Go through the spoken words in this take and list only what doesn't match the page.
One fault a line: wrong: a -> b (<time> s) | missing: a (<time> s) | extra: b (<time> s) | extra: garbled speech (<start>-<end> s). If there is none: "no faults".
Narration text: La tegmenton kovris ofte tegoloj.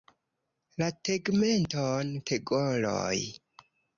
missing: kovris ofte (2.1 s)